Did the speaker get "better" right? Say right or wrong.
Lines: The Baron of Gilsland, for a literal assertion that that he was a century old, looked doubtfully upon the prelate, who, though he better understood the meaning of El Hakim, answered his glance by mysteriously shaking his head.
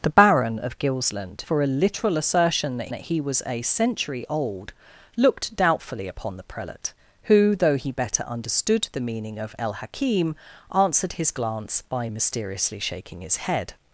right